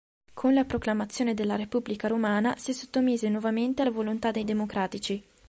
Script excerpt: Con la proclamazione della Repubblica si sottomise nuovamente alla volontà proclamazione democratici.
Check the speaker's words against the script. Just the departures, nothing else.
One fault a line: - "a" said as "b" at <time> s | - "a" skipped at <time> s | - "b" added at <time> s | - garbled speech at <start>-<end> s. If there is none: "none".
- "romana" added at 2.1 s
- "proclamazione" said as "dei" at 4.3 s